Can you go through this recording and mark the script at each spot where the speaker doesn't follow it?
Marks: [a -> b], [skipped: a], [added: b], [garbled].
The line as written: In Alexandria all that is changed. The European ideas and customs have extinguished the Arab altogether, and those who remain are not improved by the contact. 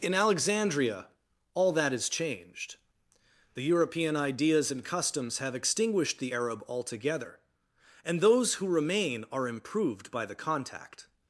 In Alexandria all that is changed. The European ideas and customs have extinguished the Arab altogether, and those who remain are [skipped: not] improved by the contact.